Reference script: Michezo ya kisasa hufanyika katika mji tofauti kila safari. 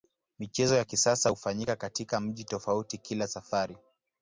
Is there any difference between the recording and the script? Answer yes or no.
no